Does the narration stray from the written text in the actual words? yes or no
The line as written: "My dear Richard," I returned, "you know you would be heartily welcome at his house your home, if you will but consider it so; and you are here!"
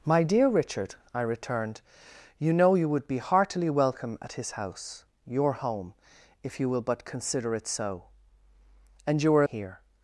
no